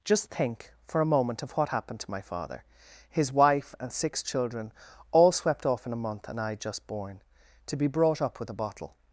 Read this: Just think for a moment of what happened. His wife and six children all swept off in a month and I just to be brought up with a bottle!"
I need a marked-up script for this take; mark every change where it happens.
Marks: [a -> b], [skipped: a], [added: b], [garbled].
Just think for a moment of what happened. [added: to my father] His wife and six children all swept off in a month and I just [added: born] to be brought up with a bottle!"